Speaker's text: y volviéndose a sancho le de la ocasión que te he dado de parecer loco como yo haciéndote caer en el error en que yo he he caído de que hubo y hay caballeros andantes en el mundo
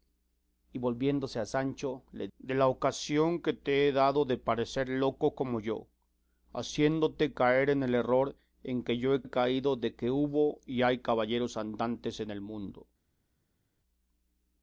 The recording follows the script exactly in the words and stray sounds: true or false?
true